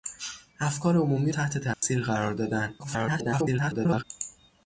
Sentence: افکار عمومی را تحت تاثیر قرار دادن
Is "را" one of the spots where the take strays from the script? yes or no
yes